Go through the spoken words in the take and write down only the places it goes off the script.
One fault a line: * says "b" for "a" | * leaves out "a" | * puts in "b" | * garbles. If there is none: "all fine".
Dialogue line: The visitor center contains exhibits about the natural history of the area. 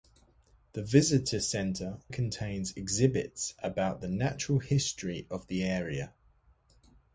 all fine